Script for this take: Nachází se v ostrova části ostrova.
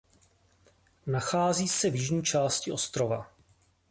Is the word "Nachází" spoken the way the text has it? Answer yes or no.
yes